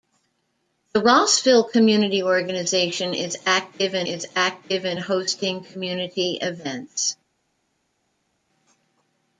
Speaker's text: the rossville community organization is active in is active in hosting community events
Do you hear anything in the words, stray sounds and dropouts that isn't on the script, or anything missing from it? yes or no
no